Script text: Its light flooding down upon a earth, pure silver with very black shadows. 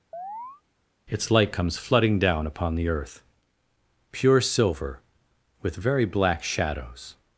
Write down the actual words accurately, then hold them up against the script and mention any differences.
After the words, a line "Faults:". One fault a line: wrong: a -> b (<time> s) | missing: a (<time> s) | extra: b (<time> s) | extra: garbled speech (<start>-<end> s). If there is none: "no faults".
Its light comes flooding down upon the earth, pure silver with very black shadows.
Faults:
extra: comes (1.5 s)
wrong: a -> the (2.7 s)